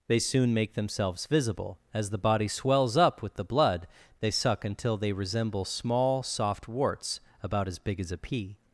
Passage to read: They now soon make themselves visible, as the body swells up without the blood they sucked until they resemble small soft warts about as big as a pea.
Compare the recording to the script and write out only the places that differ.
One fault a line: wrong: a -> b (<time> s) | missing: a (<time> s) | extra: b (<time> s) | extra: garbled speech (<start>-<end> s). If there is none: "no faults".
missing: now (0.2 s)
wrong: without -> with (3.2 s)
wrong: sucked -> suck (4.3 s)